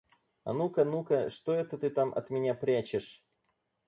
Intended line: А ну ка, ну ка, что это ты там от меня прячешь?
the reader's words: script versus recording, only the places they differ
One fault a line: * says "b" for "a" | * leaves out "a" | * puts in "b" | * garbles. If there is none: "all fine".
all fine